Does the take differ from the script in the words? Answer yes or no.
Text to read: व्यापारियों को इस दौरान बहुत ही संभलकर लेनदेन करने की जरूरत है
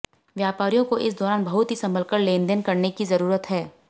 no